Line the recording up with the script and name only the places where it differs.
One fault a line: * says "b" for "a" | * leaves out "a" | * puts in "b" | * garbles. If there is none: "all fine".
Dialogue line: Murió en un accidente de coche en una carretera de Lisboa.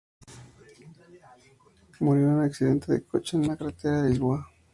all fine